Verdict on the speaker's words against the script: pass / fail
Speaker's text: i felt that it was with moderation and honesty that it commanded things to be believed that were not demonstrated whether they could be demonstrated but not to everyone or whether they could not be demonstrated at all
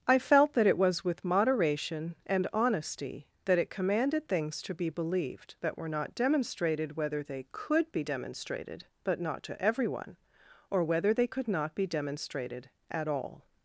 pass